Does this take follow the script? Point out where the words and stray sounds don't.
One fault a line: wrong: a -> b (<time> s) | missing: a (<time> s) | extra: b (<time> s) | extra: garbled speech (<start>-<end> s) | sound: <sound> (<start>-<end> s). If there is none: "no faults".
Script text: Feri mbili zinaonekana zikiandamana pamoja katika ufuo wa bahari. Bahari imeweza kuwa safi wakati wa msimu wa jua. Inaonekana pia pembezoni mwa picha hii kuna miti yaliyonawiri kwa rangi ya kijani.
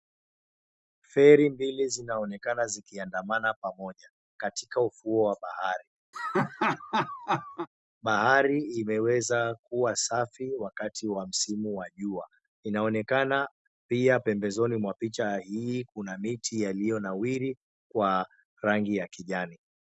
sound: laugh (6.1-7.7 s)